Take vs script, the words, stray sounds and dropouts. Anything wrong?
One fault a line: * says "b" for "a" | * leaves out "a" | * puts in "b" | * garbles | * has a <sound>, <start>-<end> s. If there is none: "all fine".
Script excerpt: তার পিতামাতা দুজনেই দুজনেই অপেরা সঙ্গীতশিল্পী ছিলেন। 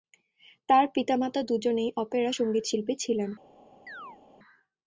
* leaves out "দুজনেই"
* has a chirp, 3.9-4.2 s